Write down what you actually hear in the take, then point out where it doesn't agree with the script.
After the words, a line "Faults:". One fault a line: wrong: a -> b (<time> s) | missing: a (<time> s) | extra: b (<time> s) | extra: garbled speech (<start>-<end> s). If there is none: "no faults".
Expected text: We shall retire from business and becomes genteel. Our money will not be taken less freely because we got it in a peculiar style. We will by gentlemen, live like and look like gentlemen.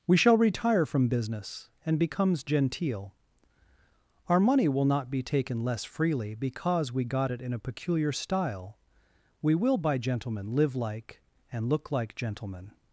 We shall retire from business and becomes genteel. Our money will not be taken less freely because we got it in a peculiar style. We will by gentlemen, live like and look like gentlemen.
Faults:
no faults